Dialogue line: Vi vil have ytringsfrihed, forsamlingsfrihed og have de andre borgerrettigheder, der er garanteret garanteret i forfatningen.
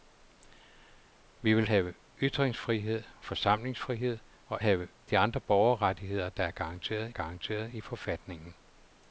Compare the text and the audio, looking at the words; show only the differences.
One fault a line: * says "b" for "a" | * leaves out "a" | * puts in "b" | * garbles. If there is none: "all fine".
all fine